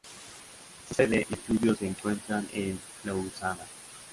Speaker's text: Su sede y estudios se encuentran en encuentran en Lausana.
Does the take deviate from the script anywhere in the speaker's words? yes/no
yes